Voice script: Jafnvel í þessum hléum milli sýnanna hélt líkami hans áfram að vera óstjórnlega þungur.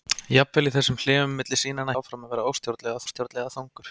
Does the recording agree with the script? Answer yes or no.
no